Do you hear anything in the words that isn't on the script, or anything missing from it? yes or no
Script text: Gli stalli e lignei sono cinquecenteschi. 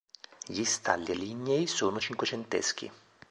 no